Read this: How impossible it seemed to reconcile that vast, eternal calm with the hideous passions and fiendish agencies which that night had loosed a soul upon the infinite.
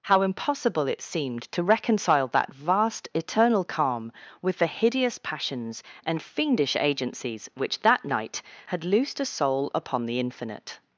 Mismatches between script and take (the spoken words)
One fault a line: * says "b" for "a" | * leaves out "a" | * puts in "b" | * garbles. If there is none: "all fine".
all fine